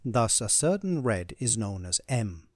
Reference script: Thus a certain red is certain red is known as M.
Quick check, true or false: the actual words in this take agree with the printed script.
false